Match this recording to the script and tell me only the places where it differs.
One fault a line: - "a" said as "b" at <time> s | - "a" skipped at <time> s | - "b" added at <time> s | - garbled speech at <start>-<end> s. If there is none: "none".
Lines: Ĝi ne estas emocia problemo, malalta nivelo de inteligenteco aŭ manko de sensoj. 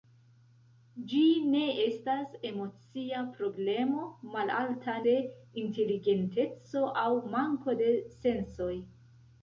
- "nivelo" skipped at 5.0 s